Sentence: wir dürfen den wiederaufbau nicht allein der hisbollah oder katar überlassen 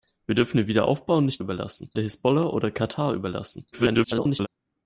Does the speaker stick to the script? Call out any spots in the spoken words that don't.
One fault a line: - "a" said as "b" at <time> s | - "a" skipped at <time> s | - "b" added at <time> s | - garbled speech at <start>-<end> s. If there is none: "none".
- "allein" said as "überlassen" at 1.4 s
- garbled speech at 3.7-4.5 s